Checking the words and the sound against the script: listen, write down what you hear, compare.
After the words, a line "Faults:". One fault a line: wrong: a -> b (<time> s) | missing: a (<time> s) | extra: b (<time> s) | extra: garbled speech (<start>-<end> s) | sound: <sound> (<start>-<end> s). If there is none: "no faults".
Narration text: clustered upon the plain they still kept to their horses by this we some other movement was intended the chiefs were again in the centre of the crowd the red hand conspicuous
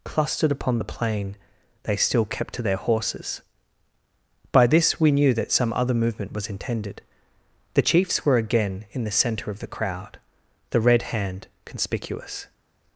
clustered upon the plain they still kept to their horses by this we knew that some other movement was intended the chiefs were again in the centre of the crowd the red hand conspicuous
Faults:
extra: knew that (5.1 s)